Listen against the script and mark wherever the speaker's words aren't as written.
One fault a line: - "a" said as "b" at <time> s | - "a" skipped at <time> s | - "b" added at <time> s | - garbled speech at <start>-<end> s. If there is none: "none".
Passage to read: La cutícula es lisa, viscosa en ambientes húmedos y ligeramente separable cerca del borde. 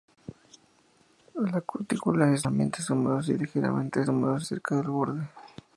- "lisa viscosa en" skipped at 2.5 s
- "separable" said as "húmedos" at 4.1 s